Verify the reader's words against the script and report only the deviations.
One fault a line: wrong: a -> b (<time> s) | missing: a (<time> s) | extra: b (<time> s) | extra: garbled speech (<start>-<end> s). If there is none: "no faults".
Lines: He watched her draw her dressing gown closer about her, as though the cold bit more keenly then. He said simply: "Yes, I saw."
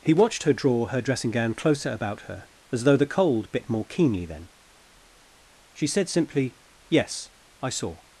wrong: He -> She (5.7 s)